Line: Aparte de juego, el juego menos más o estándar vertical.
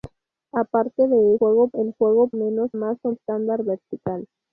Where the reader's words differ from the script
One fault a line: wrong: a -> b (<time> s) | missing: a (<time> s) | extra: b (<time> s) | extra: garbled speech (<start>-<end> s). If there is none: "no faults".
no faults